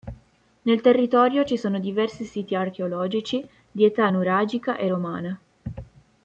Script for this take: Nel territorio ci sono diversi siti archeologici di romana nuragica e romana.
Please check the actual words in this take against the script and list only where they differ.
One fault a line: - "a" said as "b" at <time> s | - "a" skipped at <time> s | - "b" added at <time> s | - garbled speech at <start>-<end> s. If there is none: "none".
- "romana" said as "età" at 3.8 s